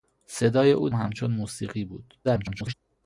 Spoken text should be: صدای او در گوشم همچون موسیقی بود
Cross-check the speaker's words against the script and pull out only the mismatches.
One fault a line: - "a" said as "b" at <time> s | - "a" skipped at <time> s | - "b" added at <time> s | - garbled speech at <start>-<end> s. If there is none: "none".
- "در گوشم" skipped at 0.9 s
- garbled speech at 2.2-2.7 s